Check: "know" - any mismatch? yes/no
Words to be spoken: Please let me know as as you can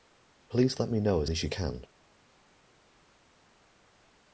no